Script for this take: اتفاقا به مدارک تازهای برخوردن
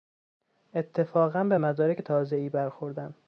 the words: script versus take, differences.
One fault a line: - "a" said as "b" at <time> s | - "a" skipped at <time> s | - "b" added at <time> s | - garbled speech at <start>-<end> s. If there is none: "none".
none